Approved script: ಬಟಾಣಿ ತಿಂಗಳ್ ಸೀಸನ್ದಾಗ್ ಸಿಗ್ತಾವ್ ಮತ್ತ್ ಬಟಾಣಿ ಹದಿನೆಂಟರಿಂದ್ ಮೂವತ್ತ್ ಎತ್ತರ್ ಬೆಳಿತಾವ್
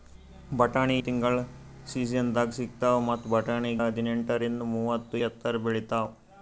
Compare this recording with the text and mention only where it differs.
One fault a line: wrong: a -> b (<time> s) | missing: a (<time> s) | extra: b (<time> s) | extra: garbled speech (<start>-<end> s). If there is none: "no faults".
no faults